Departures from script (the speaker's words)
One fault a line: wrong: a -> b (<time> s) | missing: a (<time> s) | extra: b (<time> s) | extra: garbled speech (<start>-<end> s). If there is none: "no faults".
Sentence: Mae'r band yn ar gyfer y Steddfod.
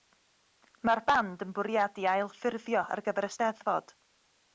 extra: bwriadu ailffurfio (1.6 s)